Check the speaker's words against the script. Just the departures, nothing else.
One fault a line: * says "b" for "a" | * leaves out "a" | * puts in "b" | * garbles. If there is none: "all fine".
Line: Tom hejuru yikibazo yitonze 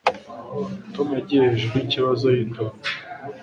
* puts in "yagiye"